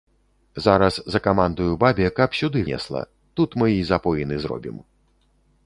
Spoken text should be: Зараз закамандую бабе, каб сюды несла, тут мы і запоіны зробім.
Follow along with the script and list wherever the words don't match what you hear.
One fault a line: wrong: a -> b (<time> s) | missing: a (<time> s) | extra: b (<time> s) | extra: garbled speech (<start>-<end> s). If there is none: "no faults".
no faults